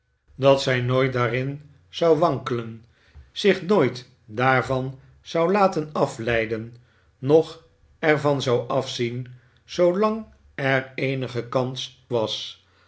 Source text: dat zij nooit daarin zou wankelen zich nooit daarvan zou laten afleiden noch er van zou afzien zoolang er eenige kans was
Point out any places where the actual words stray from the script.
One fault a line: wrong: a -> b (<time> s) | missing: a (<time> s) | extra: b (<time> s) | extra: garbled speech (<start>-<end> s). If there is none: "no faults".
no faults